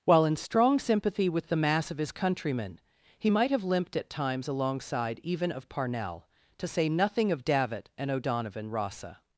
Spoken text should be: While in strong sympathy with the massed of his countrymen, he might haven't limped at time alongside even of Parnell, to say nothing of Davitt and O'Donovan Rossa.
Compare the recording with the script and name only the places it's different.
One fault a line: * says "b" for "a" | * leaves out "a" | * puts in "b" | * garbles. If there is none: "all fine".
* says "mass" for "massed"
* says "have" for "haven't"
* says "times" for "time"